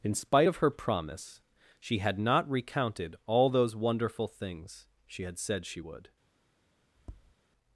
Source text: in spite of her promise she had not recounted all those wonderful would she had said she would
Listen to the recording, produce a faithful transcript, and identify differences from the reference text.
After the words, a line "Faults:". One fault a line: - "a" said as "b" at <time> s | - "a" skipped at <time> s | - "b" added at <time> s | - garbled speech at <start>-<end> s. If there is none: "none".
in spite of her promise she had not recounted all those wonderful things she had said she would
Faults:
- "would" said as "things" at 4.3 s